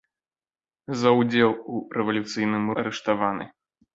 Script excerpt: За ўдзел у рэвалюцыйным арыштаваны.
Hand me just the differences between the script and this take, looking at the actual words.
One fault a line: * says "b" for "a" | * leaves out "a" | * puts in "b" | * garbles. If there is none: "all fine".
all fine